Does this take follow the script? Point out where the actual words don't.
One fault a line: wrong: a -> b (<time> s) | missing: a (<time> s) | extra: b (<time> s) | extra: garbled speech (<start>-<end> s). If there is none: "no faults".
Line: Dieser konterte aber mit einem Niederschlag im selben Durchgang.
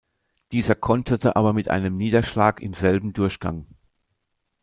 no faults